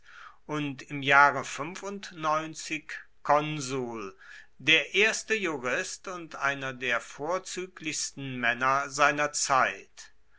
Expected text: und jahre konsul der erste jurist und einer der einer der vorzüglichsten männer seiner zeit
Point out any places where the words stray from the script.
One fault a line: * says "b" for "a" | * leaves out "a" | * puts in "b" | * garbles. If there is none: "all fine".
* puts in "im"
* leaves out "einer der"